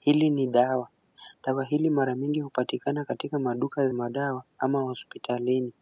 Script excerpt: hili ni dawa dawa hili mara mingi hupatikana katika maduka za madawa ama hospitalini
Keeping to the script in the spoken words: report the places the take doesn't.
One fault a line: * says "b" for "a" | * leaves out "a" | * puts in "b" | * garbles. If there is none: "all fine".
* leaves out "za"